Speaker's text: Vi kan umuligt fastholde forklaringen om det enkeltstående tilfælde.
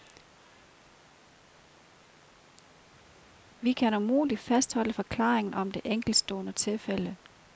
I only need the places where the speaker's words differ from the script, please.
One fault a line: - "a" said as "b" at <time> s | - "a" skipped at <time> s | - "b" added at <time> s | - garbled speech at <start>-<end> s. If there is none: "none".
none